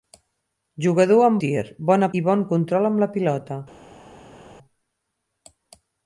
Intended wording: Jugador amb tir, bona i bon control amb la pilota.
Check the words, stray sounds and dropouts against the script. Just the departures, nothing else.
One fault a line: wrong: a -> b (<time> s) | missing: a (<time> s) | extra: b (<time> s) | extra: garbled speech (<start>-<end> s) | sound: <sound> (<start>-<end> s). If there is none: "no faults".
no faults